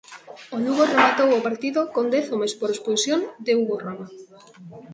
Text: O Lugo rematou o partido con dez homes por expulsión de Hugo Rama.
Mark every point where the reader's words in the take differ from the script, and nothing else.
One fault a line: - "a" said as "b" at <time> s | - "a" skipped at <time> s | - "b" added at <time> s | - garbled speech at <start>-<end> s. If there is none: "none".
none